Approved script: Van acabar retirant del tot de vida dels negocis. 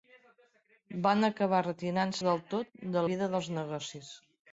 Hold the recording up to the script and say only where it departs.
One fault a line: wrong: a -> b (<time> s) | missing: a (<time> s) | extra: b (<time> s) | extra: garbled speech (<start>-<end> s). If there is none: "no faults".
no faults